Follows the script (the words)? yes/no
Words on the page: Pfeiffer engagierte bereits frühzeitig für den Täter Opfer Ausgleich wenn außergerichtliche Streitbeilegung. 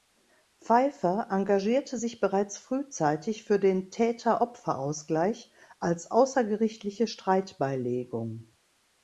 no